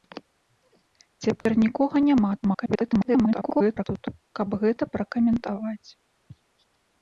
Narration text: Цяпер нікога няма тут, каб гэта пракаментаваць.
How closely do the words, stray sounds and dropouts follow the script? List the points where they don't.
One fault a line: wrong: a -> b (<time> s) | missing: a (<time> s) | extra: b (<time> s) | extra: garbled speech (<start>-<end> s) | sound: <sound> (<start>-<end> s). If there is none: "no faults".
sound: dropout (1.4-1.5 s)
extra: garbled speech (2.4-3.9 s)